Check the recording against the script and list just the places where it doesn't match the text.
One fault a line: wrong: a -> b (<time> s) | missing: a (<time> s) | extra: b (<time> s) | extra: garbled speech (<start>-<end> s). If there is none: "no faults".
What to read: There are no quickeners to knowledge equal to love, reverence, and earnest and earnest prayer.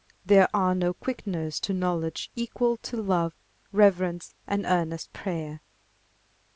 missing: and earnest (5.1 s)